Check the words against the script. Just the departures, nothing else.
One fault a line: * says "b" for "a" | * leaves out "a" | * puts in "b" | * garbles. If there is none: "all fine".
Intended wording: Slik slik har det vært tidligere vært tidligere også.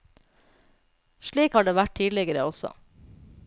* leaves out "slik"
* leaves out "vært tidligere"